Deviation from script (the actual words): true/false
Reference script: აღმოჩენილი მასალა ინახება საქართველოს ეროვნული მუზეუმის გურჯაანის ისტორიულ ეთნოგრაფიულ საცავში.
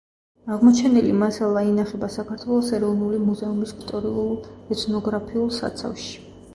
true